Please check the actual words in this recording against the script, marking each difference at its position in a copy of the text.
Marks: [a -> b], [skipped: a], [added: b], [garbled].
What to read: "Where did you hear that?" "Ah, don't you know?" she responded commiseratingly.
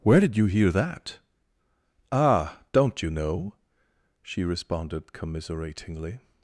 "Where did you hear that?" "Ah, don't you know?" she responded commiseratingly.